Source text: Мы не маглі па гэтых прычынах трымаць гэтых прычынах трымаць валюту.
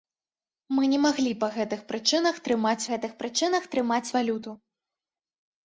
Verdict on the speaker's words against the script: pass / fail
pass